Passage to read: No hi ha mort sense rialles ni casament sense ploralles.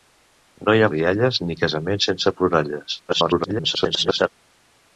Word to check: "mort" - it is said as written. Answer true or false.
false